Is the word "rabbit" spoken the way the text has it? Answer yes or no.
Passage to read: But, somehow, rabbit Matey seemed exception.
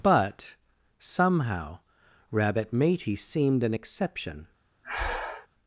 yes